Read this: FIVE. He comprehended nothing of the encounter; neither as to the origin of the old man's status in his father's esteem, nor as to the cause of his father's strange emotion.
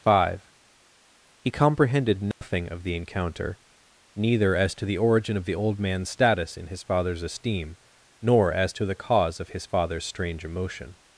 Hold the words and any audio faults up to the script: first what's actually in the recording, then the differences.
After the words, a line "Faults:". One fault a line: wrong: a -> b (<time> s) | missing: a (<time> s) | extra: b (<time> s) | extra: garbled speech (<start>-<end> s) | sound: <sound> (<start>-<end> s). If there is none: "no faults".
FIVE. He comprehended nothing of the encounter; neither as to the origin of the old man's status in his father's esteem, nor as to the cause of his father's strange emotion.
Faults:
sound: dropout (2.3-2.4 s)